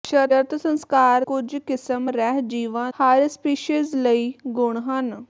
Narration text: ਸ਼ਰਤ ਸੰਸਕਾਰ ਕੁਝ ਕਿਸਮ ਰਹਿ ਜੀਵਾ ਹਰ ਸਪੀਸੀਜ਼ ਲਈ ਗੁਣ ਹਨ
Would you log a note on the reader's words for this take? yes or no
no